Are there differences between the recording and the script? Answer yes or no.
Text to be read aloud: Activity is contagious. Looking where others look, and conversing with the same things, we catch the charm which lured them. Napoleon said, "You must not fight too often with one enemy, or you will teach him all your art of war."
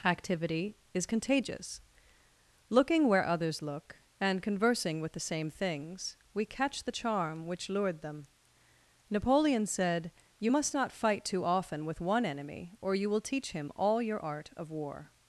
no